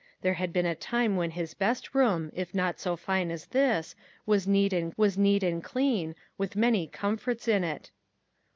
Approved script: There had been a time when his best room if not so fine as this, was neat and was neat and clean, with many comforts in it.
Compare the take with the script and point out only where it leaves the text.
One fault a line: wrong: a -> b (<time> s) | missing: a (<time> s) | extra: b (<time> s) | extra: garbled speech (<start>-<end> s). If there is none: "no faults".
no faults